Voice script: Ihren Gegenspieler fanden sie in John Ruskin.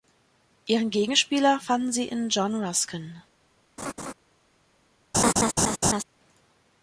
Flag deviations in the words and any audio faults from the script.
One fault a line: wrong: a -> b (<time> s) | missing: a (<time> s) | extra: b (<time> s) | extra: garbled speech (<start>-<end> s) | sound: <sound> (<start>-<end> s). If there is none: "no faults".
sound: laugh (3.8-4.1 s)
sound: laugh (5.1-6.0 s)